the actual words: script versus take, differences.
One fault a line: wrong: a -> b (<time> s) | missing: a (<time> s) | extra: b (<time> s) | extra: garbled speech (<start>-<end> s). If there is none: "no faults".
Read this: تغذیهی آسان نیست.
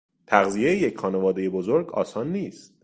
extra: یک خانوادهی بزرگ (0.8 s)